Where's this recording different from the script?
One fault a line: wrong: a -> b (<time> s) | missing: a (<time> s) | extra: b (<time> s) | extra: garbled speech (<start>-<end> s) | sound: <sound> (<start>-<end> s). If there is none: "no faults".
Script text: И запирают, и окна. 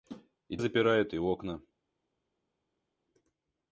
no faults